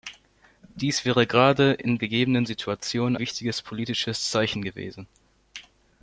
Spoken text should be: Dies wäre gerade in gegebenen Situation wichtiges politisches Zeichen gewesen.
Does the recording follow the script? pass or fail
pass